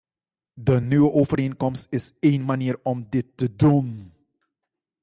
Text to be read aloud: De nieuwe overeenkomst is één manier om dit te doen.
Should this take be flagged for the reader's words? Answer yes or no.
no